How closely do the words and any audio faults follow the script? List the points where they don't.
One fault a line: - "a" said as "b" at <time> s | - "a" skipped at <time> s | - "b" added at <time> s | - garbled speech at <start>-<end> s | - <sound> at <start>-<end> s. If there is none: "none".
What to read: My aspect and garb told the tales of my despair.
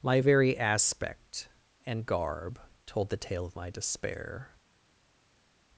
- "very" added at 0.2 s
- "tales" said as "tale" at 3.2 s